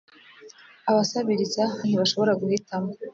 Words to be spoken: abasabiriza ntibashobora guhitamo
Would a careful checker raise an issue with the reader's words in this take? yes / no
no